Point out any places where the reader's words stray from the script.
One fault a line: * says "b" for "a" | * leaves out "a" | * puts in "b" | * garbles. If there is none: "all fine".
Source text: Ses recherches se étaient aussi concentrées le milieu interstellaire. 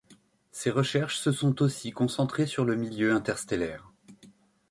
* says "sont" for "étaient"
* puts in "sur"